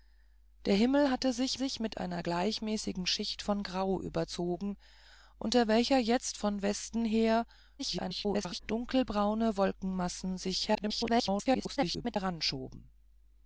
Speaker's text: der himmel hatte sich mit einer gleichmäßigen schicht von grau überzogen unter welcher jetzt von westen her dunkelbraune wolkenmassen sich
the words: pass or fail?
fail